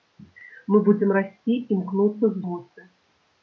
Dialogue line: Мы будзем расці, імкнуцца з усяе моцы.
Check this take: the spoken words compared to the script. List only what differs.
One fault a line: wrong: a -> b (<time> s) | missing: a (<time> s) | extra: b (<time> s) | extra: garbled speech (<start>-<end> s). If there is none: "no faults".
missing: усяе (2.4 s)